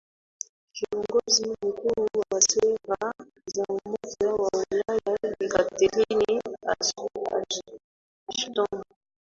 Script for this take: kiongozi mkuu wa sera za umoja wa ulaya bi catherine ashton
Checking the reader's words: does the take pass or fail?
pass